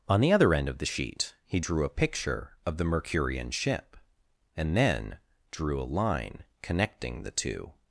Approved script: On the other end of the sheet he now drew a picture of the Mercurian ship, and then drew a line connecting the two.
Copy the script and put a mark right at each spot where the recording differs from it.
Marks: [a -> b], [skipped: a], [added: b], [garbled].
On the other end of the sheet he [skipped: now] drew a picture of the Mercurian ship, and then drew a line connecting the two.